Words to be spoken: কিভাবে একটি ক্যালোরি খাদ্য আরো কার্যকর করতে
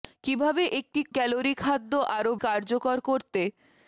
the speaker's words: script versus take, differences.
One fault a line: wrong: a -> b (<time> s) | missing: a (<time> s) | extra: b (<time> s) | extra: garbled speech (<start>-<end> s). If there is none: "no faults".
no faults